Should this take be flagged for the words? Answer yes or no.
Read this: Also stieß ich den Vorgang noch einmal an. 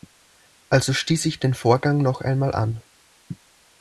no